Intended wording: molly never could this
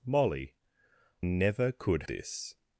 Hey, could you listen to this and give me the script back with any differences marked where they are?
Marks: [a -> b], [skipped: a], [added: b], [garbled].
molly never could this